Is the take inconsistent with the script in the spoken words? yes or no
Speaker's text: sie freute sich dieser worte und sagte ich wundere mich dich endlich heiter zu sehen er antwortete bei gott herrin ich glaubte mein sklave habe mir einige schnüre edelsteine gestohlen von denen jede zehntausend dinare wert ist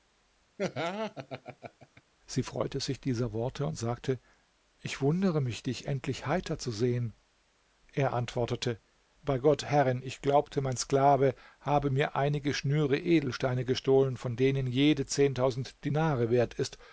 no